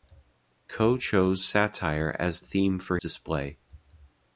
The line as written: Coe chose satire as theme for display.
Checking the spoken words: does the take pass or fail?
pass